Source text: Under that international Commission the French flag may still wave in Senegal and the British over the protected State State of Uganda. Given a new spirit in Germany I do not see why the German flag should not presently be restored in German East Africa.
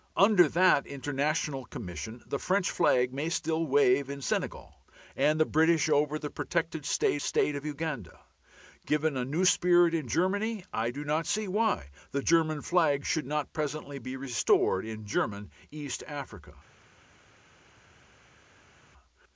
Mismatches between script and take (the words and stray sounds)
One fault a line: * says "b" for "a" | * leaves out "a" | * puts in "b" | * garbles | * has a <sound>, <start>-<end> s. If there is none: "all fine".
all fine